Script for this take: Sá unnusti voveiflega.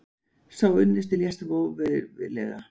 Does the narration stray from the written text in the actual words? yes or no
yes